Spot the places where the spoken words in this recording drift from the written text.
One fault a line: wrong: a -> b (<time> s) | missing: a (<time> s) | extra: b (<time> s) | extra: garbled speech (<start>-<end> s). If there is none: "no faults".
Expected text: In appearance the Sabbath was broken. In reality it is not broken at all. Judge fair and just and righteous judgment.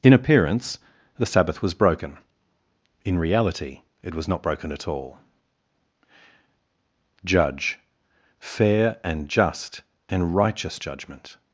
wrong: is -> was (4.2 s)